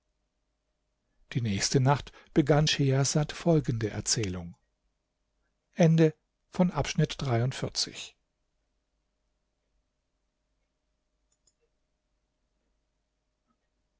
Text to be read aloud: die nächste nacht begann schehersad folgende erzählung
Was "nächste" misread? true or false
false